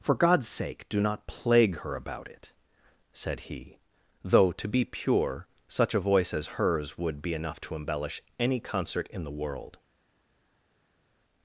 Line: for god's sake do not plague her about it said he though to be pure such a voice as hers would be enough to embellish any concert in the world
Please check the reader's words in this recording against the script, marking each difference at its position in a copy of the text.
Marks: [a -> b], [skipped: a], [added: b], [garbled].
for god's sake do not plague her about it said he though to be pure such a voice as hers would be enough to embellish any concert in the world